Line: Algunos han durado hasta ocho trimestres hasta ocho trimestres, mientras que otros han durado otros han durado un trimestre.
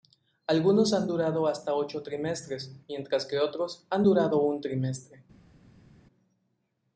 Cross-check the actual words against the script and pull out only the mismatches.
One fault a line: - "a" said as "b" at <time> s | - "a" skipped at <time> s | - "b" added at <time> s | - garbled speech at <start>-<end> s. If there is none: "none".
- "hasta ocho trimestres" skipped at 2.7 s
- "otros han durado" skipped at 4.4 s